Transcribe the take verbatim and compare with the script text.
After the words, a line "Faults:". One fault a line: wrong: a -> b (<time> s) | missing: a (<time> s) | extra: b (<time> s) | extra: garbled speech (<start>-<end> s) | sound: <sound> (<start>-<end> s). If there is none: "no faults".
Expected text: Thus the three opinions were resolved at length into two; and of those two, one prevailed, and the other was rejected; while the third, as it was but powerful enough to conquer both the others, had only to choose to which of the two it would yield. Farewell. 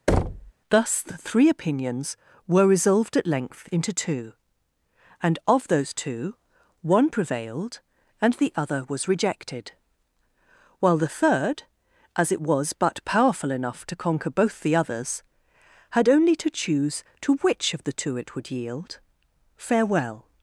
Thus the three opinions were resolved at length into two; and of those two, one prevailed, and the other was rejected; while the third, as it was but powerful enough to conquer both the others, had only to choose to which of the two it would yield. Farewell.
Faults:
sound: thud (0.1-0.5 s)